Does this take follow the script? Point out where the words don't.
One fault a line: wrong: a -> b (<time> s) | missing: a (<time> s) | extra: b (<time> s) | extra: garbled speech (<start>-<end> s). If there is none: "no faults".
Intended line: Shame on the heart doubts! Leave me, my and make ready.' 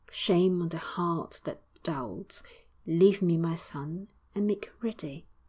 extra: that (1.4 s)
extra: son (3.5 s)